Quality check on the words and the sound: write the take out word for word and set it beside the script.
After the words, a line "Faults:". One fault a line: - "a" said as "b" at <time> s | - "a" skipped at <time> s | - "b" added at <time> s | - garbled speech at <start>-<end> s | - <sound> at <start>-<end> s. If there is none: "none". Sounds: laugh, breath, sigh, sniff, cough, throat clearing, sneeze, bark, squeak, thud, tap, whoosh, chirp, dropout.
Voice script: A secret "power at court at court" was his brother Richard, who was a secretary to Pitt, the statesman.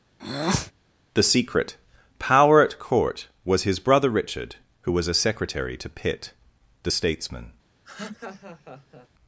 The secret "power at court" was his brother Richard, who was a secretary to Pitt, the statesman.
Faults:
- breath at 0.2-0.7 s
- "A" said as "The" at 1.1 s
- "at court" skipped at 3.3 s
- laugh at 7.8-9.1 s